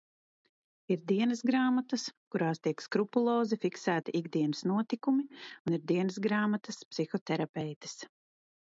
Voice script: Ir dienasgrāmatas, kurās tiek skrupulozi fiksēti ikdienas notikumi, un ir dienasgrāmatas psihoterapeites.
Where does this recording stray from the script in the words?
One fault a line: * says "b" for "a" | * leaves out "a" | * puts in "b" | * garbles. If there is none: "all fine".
all fine